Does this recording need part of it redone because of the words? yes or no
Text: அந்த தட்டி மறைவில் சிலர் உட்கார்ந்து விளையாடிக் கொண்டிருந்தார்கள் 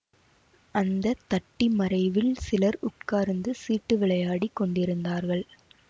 yes